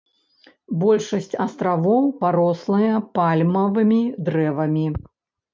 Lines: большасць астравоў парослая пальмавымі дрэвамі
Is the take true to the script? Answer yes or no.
yes